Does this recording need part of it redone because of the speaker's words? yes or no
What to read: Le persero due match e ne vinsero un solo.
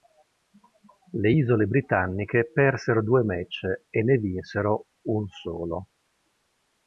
yes